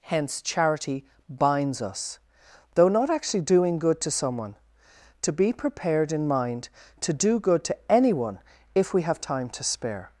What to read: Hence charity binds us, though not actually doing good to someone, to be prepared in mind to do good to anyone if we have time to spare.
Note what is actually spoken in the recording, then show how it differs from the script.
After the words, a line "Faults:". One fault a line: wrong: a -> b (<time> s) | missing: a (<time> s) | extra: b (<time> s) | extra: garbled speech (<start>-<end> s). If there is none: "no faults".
Hence charity binds us, though not actually doing good to someone, to be prepared in mind to do good to anyone if we have time to spare.
Faults:
no faults